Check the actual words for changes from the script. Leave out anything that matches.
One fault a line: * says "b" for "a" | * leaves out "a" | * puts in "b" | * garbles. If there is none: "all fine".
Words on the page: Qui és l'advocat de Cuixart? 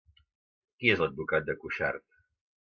all fine